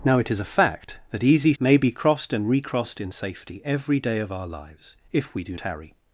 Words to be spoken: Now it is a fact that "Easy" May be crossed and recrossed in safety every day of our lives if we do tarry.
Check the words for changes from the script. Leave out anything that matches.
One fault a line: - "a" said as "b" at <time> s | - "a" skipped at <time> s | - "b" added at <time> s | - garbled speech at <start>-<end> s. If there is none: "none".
none